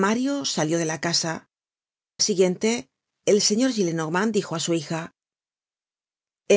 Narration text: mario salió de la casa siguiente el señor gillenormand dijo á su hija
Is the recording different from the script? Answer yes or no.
no